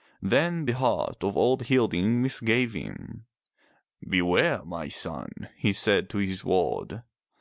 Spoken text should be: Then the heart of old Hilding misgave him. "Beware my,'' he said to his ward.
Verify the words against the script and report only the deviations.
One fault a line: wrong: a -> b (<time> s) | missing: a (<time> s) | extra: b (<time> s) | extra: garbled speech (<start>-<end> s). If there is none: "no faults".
extra: son (4.9 s)